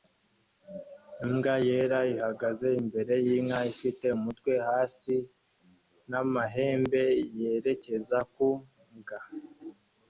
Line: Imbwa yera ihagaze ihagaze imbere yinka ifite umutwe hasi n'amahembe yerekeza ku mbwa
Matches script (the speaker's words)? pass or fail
fail